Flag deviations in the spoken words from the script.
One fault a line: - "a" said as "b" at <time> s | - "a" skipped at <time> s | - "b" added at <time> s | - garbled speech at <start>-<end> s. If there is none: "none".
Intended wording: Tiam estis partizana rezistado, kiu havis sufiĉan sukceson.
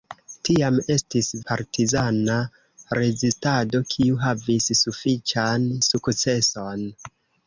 none